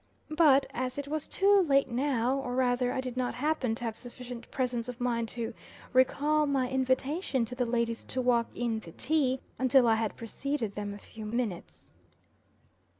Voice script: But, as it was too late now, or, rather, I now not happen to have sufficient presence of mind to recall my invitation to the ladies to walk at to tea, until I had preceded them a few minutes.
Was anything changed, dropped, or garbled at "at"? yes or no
yes